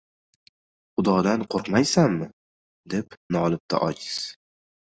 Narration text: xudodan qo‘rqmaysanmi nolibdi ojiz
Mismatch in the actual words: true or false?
true